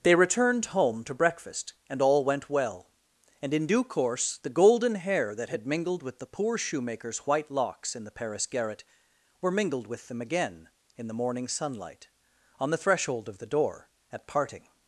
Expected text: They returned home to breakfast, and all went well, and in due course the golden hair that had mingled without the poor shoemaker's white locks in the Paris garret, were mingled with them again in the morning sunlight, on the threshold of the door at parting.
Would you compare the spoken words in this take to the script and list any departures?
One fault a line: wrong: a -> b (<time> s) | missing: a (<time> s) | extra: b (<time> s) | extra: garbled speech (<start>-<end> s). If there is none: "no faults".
wrong: without -> with (6.0 s)